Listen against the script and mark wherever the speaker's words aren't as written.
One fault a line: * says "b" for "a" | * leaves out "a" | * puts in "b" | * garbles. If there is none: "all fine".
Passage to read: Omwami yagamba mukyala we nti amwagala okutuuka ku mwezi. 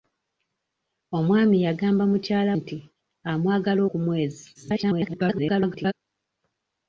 * leaves out "we"
* leaves out "okutuuka"
* garbles